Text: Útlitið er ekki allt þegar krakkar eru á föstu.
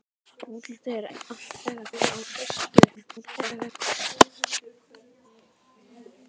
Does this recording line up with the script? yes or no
no